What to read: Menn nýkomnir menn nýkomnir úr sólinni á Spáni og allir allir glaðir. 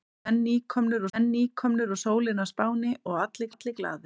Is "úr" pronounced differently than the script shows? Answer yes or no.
no